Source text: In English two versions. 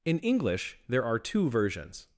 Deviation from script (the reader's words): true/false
true